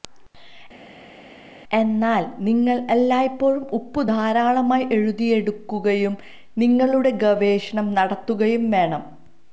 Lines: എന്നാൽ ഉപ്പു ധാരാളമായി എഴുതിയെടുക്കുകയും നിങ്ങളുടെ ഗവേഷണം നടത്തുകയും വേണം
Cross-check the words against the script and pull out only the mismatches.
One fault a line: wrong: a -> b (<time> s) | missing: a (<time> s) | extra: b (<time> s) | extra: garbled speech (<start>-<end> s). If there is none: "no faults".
extra: നിങ്ങൾ എല്ലായ്പ്പോഴും (2.4 s)